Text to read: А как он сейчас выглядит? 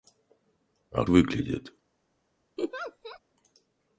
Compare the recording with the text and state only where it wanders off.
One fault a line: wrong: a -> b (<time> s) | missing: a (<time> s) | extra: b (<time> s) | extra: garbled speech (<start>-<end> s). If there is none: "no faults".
missing: как он сейчас (1.1 s)